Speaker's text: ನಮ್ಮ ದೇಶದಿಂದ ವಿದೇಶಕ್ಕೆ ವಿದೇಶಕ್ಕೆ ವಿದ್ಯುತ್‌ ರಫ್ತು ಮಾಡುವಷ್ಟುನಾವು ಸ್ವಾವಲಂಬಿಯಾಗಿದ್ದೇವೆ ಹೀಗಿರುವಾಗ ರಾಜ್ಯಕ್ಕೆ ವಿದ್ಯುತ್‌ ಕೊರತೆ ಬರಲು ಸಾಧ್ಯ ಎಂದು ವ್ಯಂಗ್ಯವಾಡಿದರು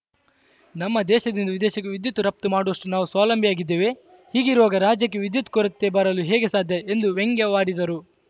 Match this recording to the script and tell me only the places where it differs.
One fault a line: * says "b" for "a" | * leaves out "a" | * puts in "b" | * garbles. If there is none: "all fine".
* leaves out "ವಿದೇಶಕ್ಕೆ"
* puts in "ಹೇಗೆ"